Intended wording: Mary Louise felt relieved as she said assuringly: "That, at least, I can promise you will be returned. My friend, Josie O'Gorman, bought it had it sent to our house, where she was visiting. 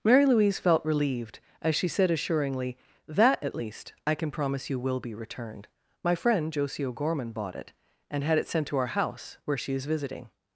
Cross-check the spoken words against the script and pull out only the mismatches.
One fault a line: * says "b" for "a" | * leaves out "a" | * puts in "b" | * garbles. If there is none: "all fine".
* puts in "and"
* says "is" for "was"